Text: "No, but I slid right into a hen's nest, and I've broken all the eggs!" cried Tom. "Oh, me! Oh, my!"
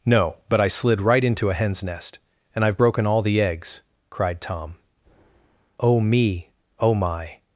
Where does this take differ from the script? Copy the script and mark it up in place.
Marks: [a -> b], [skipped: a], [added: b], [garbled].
"No, but I slid right into a hen's nest, and I've broken all the eggs!" cried Tom. "Oh, me! Oh, my!"